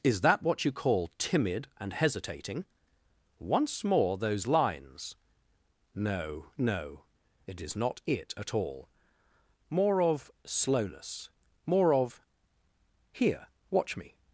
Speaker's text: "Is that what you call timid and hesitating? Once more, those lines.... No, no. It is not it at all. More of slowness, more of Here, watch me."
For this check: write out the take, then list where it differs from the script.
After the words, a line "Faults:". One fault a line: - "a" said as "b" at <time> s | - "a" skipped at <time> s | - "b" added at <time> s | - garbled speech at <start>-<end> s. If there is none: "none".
"Is that what you call timid and hesitating? Once more, those lines.... No, no. It is not it at all. More of slowness, more of Here, watch me."
Faults:
none